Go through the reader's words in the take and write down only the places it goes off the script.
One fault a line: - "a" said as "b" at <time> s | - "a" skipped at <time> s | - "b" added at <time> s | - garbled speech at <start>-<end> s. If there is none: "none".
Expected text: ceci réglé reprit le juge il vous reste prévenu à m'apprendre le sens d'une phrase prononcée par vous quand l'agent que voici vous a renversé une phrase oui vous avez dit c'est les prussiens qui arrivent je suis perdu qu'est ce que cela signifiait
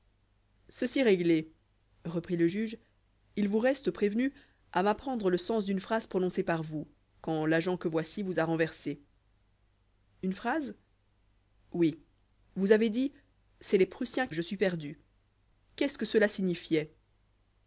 - "qui arrivent" skipped at 14.3 s